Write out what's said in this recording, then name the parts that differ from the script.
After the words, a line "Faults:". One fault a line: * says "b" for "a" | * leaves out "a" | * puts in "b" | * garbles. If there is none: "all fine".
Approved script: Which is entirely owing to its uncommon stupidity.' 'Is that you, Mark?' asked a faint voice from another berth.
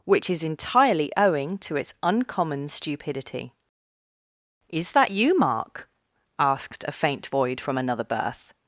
Which is entirely owing to its uncommon stupidity.' 'Is that you, Mark?' asked a faint void from another berth.
Faults:
* says "void" for "voice"